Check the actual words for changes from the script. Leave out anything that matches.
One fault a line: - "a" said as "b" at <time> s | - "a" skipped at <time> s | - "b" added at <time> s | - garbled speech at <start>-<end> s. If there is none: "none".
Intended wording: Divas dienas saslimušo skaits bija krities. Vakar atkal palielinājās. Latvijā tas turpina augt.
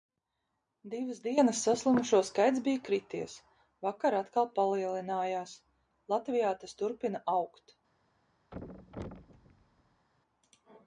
none